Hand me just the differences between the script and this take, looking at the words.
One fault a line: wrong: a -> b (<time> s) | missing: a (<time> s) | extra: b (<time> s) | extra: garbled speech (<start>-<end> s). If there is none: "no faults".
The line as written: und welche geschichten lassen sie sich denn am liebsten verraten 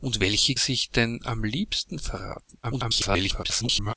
missing: geschichten lassen sie (0.5 s)
extra: garbled speech (2.6-3.9 s)